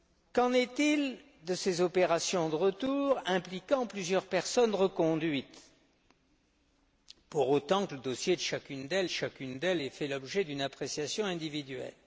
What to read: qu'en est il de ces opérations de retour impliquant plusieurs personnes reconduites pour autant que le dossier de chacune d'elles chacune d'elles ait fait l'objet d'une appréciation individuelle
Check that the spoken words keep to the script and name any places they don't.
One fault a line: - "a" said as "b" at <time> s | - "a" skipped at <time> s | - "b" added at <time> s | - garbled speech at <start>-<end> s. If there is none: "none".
none